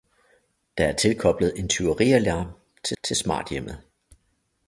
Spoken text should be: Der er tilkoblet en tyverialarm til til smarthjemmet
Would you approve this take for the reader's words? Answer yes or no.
yes